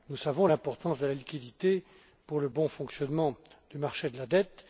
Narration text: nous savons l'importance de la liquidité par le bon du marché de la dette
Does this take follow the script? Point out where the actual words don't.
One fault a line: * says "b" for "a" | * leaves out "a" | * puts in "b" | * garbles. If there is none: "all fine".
* says "pour" for "par"
* puts in "fonctionnement"